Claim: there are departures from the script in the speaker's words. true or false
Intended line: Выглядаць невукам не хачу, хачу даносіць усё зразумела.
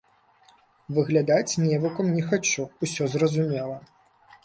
true